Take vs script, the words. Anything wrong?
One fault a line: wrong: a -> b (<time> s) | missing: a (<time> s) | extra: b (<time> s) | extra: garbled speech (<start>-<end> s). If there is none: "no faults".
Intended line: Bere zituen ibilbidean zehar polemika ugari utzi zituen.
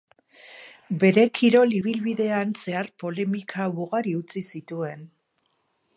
wrong: zituen -> kirol (1.4 s)